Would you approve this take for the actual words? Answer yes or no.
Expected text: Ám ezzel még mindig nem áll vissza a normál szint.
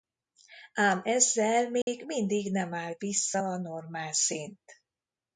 yes